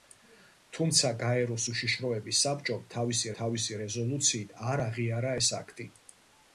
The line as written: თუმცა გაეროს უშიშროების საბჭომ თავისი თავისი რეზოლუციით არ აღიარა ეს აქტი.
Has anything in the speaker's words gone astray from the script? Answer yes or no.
no